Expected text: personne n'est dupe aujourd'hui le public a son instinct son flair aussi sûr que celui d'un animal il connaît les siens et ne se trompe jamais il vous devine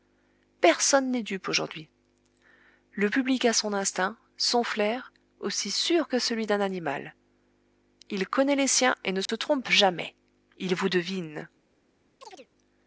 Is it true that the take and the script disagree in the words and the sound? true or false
true